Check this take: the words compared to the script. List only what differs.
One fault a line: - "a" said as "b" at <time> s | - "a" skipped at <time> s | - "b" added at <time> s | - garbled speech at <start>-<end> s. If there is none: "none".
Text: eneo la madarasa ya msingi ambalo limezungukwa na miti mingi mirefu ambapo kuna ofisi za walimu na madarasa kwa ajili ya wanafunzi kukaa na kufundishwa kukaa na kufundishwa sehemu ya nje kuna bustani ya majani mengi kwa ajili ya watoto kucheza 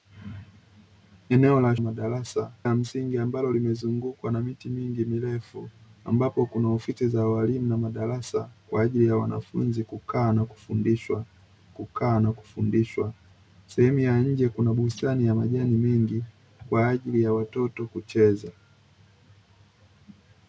none